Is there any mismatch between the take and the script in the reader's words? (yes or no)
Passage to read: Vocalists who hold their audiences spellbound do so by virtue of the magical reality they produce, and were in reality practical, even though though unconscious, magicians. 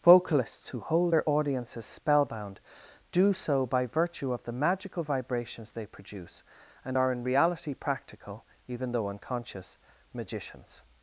yes